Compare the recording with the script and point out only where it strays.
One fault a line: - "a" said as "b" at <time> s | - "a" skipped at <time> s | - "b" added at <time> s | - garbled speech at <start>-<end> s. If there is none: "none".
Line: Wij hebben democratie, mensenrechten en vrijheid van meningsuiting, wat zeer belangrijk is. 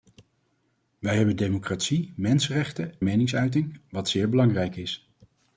- "en vrijheid van" skipped at 3.0 s